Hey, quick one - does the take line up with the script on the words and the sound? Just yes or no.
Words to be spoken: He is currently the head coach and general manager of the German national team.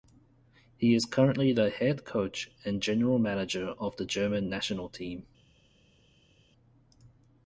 yes